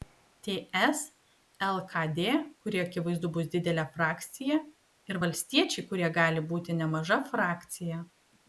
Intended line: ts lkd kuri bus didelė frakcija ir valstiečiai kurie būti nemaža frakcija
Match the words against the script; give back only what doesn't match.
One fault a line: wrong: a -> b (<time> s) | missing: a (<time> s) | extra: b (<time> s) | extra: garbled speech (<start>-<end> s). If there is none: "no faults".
extra: akivaizdu (2.9 s)
extra: gali (6.2 s)